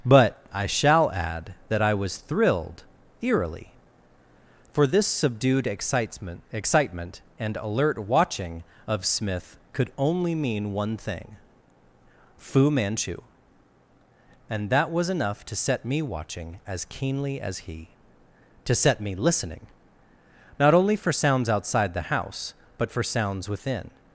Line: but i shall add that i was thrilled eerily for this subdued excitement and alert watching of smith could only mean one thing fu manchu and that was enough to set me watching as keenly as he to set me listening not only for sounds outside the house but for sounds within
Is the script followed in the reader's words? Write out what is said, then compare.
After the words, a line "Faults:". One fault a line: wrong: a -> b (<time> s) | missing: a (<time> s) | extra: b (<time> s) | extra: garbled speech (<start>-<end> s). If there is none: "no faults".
but i shall add that i was thrilled eerily for this subdued excitement excitement and alert watching of smith could only mean one thing fu manchu and that was enough to set me watching as keenly as he to set me listening not only for sounds outside the house but for sounds within
Faults:
extra: excitement (6.5 s)